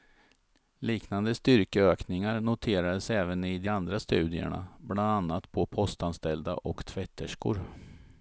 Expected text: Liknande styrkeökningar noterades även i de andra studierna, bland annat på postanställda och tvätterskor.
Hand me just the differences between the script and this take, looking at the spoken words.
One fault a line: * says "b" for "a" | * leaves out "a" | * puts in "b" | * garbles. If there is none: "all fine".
all fine